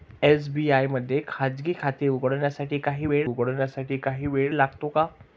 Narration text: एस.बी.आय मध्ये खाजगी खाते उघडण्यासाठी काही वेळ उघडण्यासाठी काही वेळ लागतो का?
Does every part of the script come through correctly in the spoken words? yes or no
yes